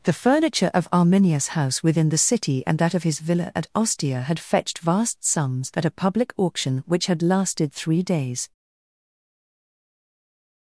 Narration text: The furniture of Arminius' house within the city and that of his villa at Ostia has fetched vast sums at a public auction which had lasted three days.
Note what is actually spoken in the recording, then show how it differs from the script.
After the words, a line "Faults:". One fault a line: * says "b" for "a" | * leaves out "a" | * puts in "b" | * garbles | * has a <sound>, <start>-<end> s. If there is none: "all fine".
The furniture of Arminius' house within the city and that of his villa at Ostia had fetched vast sums at a public auction which had lasted three days.
Faults:
* says "had" for "has"